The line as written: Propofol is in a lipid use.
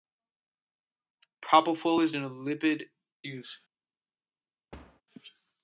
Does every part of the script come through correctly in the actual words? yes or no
yes